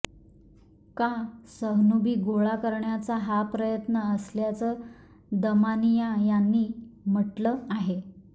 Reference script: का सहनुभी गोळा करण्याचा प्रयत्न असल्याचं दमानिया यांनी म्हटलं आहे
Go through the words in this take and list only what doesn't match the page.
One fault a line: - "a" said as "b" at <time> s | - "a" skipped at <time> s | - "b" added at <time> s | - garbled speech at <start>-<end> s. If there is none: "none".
- "हा" added at 3.2 s